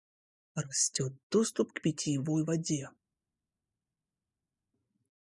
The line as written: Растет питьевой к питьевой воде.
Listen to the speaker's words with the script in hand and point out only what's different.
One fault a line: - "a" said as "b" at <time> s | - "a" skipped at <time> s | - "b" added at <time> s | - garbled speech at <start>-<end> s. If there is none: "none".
- "питьевой" said as "доступ" at 1.3 s